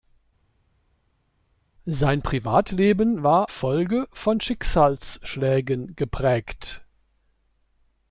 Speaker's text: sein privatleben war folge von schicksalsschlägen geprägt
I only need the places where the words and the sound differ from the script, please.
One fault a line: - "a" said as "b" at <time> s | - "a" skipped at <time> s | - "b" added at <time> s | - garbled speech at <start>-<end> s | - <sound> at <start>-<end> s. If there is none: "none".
none